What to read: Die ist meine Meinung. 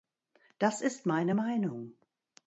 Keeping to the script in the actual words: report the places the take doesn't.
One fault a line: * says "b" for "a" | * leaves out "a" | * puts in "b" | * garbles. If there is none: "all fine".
* says "Das" for "Die"